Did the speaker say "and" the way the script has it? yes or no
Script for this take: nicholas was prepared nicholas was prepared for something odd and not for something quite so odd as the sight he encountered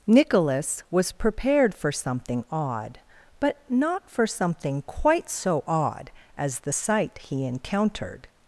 no